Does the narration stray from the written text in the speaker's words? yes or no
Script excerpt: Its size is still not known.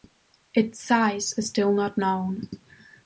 no